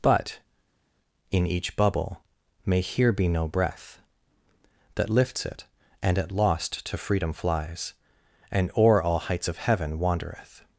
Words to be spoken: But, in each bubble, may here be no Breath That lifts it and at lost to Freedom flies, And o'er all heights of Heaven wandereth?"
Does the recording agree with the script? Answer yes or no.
yes